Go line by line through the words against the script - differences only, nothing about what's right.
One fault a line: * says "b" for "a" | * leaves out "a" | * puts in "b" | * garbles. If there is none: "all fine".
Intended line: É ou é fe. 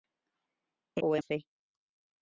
all fine